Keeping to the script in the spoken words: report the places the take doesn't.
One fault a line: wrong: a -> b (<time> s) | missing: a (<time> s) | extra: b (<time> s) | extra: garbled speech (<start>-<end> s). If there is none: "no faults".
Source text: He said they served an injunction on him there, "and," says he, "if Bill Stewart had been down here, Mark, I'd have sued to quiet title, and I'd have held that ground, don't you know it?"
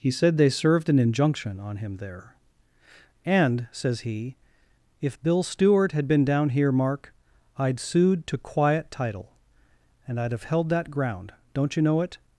missing: have (7.8 s)